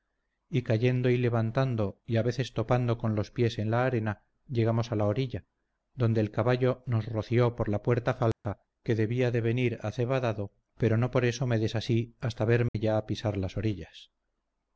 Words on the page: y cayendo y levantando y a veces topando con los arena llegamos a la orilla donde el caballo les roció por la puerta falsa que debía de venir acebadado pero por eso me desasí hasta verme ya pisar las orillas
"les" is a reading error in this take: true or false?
true